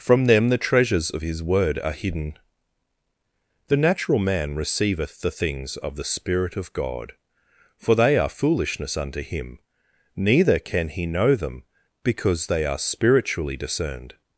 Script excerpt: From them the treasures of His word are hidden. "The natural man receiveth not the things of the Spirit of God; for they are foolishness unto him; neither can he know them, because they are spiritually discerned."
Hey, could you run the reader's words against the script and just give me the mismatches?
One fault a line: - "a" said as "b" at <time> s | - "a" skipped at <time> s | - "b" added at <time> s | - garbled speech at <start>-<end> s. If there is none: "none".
- "not" skipped at 5.2 s